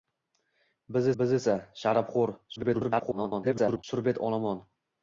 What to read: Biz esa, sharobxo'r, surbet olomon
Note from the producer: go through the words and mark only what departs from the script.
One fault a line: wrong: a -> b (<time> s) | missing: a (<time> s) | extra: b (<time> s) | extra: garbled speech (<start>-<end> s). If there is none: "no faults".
extra: biz (1.2 s)
extra: garbled speech (2.6-3.8 s)